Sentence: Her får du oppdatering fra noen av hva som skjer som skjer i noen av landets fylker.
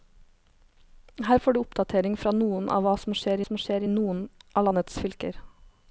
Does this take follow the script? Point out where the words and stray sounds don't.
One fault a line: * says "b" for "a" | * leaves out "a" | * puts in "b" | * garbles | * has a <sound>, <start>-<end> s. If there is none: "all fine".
all fine